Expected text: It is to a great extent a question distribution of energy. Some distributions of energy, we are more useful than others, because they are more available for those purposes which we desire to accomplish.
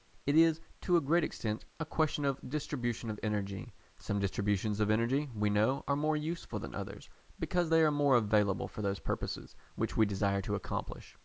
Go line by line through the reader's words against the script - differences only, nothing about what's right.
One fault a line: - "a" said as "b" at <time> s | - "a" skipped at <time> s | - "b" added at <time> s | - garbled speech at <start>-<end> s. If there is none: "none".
- "of" added at 2.2 s
- "know" added at 5.5 s